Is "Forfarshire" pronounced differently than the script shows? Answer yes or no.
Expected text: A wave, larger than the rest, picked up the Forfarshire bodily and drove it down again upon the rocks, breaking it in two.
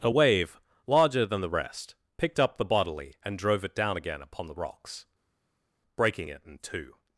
yes